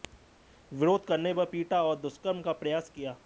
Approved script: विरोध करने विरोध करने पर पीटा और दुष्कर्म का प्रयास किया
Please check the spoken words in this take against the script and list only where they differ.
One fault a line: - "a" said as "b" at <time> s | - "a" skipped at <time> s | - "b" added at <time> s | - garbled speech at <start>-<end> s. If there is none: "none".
- "विरोध करने" skipped at 1.3 s